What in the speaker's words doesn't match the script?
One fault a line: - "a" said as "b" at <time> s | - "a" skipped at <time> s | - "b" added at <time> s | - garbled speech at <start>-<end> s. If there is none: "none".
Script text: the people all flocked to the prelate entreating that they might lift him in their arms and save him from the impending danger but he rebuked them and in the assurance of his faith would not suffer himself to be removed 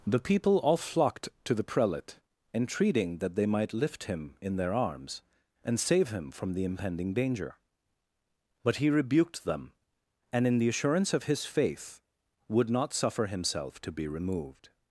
none